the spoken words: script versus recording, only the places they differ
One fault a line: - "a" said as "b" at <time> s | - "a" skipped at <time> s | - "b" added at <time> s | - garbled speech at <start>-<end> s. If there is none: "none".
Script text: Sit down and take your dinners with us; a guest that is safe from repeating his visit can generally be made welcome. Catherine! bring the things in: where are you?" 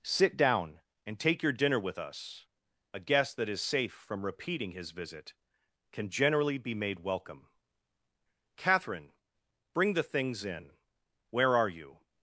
- "dinners" said as "dinner" at 1.5 s